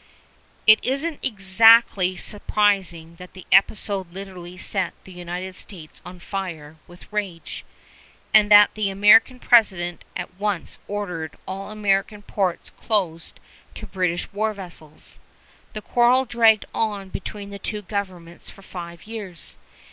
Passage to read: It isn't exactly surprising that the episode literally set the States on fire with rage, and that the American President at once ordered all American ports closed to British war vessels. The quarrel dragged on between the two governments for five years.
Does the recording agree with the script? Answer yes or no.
no